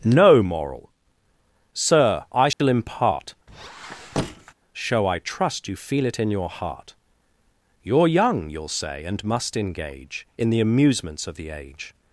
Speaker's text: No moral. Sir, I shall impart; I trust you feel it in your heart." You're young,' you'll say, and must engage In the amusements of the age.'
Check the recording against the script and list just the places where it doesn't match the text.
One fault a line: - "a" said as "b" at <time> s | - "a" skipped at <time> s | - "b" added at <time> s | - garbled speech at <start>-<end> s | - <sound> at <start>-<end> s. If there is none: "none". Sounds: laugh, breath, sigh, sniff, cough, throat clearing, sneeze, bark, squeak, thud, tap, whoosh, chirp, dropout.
- dropout at 2.5-2.6 s
- squeak at 3.5-4.5 s
- "show" added at 4.7 s